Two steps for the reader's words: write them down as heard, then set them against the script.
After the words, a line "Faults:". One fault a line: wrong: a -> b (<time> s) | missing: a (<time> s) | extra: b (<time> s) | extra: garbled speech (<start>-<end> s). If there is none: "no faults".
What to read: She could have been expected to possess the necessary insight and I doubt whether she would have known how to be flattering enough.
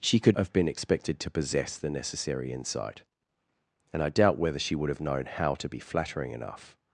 She could have been expected to possess the necessary insight and I doubt whether she would have known how to be flattering enough.
Faults:
no faults